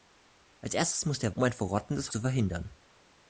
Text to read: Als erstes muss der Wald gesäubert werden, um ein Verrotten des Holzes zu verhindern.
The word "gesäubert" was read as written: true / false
false